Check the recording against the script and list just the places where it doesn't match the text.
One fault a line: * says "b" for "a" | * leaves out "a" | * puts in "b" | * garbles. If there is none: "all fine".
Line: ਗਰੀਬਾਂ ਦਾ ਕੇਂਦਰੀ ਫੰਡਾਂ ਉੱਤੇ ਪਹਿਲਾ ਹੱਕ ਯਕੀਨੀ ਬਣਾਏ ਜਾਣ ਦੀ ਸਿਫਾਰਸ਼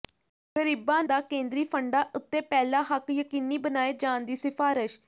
all fine